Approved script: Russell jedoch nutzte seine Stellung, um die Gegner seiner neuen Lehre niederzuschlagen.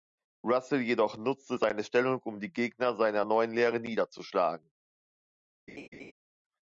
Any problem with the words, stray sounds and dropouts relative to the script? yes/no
yes